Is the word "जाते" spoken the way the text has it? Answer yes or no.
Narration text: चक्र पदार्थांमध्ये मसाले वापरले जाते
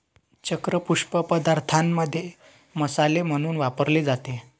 yes